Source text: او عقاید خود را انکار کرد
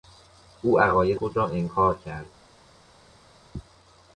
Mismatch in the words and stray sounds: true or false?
false